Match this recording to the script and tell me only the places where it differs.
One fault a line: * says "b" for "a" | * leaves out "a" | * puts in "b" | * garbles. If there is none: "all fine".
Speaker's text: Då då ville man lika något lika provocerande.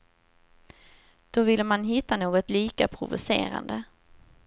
* leaves out "då"
* says "hitta" for "lika"